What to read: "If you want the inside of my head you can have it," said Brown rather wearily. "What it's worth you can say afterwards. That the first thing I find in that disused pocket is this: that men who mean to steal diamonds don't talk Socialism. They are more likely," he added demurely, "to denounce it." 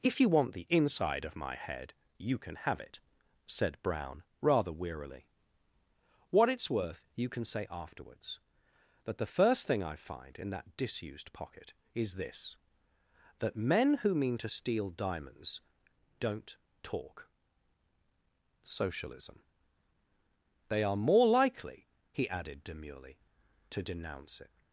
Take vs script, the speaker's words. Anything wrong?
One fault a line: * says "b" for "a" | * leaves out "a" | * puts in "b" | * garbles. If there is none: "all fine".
all fine